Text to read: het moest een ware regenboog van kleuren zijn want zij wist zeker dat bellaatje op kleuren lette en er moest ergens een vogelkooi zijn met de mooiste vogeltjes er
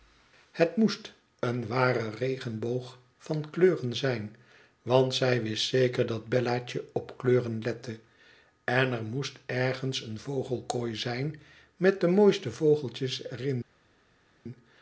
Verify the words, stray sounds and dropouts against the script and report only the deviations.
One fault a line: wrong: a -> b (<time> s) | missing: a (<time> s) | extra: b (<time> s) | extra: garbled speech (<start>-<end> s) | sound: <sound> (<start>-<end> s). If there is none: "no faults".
no faults